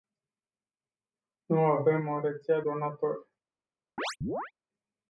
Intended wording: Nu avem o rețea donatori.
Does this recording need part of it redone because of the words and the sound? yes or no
yes